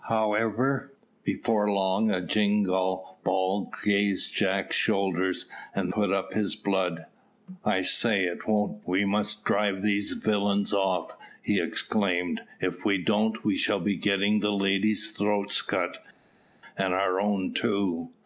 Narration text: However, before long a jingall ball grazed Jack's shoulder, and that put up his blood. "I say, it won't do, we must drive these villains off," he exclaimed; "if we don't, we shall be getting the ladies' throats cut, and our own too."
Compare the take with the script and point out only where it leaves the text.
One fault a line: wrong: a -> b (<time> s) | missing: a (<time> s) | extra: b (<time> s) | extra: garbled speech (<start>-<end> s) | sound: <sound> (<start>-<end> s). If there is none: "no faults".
missing: that (5.9 s)
missing: do (8.8 s)